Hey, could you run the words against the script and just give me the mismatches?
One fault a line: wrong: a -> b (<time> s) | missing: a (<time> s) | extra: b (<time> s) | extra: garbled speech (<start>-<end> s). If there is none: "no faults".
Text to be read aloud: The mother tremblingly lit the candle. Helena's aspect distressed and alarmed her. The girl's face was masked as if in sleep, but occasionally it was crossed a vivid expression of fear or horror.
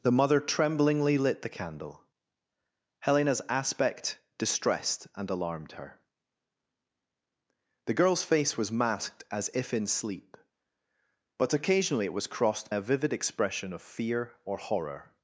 no faults